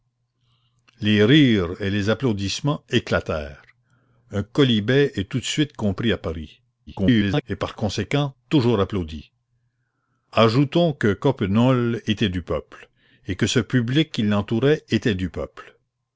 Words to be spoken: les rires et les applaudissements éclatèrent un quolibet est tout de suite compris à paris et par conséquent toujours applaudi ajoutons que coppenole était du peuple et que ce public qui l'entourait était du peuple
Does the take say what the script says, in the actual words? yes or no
no